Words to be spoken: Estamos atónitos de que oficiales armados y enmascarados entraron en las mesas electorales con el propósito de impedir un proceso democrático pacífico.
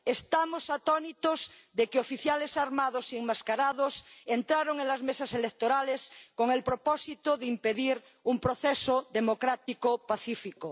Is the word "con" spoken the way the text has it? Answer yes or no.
yes